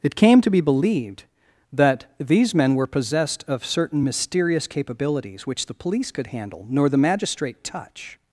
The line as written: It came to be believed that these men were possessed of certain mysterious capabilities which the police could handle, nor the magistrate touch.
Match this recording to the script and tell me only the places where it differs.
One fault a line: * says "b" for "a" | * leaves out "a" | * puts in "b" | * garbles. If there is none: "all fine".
all fine